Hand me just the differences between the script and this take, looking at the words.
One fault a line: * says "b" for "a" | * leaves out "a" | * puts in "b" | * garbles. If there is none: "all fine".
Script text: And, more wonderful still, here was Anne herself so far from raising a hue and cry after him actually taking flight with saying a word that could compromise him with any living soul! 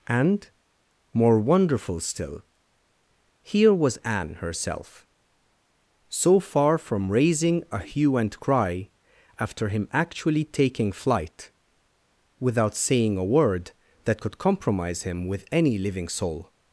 * says "without" for "with"